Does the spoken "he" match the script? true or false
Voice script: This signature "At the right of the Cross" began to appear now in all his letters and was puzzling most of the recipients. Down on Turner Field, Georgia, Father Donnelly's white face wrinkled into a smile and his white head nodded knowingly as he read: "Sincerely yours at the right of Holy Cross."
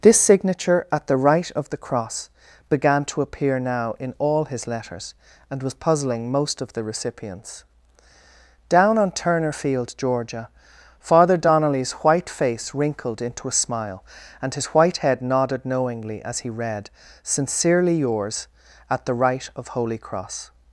true